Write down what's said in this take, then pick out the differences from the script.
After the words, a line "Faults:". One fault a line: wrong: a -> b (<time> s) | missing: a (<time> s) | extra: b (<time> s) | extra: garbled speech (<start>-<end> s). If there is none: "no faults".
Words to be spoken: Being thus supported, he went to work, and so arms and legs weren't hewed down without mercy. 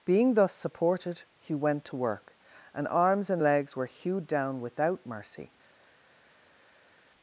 Being thus supported, he went to work, and arms and legs were hewed down without mercy.
Faults:
missing: so (2.9 s)
wrong: weren't -> were (3.7 s)